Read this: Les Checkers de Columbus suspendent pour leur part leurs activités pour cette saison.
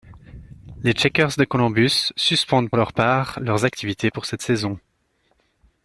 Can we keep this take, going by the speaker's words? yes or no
no